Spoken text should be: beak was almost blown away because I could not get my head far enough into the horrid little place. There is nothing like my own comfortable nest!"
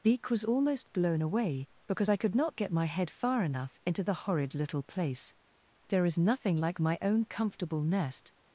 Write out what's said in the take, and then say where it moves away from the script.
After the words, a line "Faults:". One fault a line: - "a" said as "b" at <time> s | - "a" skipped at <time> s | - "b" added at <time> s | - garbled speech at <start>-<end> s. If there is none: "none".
beak was almost blown away because I could not get my head far enough into the horrid little place. There is nothing like my own comfortable nest!"
Faults:
none